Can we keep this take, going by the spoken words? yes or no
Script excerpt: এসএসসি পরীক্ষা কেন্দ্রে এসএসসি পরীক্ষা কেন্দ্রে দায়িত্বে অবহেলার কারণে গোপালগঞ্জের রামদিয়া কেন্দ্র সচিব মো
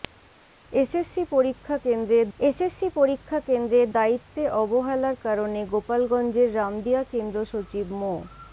yes